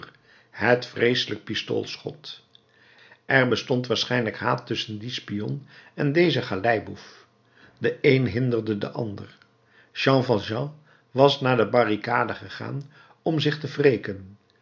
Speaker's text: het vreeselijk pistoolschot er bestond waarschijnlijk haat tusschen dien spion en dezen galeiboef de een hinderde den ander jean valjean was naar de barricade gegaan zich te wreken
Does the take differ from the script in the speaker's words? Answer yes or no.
yes